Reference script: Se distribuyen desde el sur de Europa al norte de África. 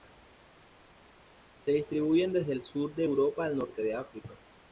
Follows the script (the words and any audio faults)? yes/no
yes